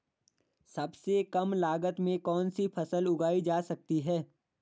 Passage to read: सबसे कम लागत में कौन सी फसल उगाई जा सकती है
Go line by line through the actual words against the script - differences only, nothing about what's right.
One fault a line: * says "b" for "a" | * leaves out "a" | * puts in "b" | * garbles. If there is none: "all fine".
all fine